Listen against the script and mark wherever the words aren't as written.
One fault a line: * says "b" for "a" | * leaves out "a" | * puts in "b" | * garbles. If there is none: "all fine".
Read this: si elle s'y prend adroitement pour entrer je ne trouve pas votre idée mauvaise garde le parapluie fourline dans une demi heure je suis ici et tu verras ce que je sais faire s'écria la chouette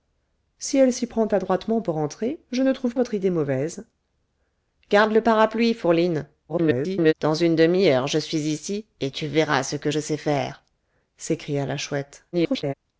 * leaves out "pas"
* garbles
* garbles